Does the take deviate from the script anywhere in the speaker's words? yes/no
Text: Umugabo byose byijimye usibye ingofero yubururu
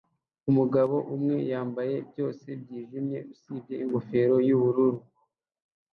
yes